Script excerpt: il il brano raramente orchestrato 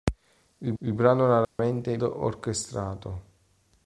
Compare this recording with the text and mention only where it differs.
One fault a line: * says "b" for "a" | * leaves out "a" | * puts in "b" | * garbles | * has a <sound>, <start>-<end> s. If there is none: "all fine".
* has a dropout, 1.4-1.6 s